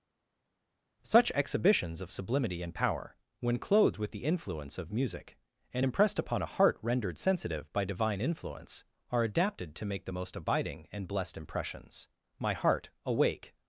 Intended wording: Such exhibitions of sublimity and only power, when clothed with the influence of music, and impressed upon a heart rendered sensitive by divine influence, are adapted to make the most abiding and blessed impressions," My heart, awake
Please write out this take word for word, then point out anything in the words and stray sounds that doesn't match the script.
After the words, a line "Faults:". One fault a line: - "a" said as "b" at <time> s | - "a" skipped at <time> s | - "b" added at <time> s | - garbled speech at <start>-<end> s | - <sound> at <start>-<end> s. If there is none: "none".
Such exhibitions of sublimity and power, when clothed with the influence of music, and impressed upon a heart rendered sensitive by divine influence, are adapted to make the most abiding and blessed impressions," My heart, awake
Faults:
- "only" skipped at 2.7 s